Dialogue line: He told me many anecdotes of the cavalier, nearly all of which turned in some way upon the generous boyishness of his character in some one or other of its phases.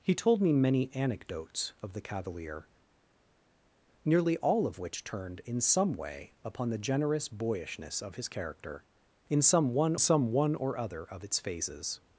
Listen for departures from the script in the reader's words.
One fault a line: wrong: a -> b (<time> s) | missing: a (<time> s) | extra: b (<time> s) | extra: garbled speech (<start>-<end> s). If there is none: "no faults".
extra: some one (10.0 s)